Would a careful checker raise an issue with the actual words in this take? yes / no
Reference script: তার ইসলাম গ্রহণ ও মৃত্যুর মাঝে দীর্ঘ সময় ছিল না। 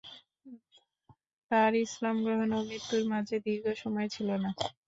no